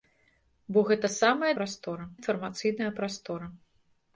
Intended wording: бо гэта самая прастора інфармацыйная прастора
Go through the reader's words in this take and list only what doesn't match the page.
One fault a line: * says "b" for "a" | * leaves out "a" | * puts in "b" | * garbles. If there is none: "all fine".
all fine